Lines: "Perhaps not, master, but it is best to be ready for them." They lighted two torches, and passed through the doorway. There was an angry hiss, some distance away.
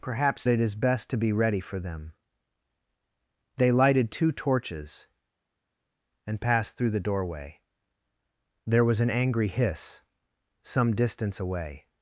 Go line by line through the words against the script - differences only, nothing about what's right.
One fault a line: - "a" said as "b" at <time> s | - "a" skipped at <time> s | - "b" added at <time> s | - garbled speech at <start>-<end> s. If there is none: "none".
- "not master but" skipped at 0.5 s